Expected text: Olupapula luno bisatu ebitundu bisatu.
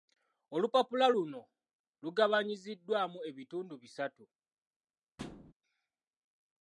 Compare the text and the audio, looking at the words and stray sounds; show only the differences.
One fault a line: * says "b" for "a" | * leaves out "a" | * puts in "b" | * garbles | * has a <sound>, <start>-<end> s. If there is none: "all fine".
* says "lugabanyiziddwamu" for "bisatu"
* has a thud, 5.2-5.5 s